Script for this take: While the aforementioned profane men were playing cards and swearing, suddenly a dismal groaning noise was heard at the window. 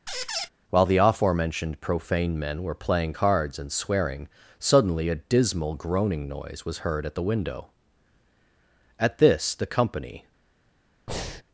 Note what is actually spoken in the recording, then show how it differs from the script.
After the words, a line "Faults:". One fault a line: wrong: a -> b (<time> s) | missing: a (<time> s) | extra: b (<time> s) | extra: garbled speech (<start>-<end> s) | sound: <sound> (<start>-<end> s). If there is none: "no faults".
While the aforementioned profane men were playing cards and swearing, suddenly a dismal groaning noise was heard at the window. At this the company
Faults:
sound: squeak (0.1-0.5 s)
extra: At this the company (9.0 s)
sound: breath (11.1-11.4 s)